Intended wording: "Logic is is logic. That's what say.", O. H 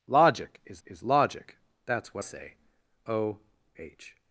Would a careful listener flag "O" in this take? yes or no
no